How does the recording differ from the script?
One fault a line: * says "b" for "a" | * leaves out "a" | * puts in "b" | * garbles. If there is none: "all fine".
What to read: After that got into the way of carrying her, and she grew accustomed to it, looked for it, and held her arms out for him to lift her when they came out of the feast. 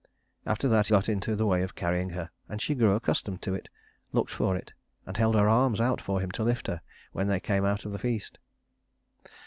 all fine